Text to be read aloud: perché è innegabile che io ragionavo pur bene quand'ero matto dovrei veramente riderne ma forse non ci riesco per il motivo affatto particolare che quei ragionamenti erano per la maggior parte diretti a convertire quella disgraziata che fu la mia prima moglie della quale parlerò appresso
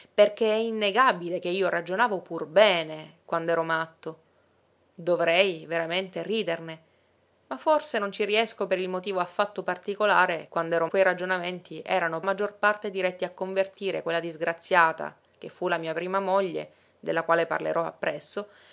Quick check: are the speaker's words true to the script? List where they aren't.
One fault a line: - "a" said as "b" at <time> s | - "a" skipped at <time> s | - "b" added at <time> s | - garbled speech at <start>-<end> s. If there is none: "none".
- "che" said as "quand'ero" at 10.5 s
- "per la" skipped at 12.2 s